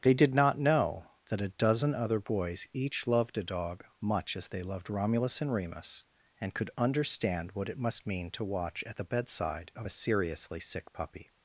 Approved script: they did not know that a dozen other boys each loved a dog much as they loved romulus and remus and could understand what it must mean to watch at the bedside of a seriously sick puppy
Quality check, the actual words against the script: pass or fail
pass